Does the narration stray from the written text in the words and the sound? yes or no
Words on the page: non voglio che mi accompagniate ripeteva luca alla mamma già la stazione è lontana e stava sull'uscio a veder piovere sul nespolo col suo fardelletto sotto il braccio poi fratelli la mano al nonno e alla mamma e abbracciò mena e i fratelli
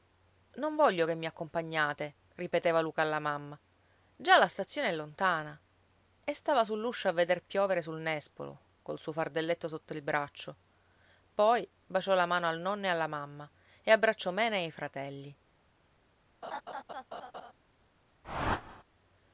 yes